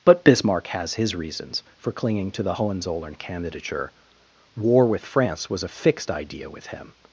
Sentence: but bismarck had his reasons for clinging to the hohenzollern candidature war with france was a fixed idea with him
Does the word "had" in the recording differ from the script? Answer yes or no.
yes